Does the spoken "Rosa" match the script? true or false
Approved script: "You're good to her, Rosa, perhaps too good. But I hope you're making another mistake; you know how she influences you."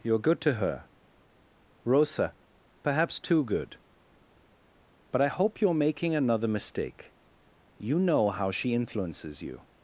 true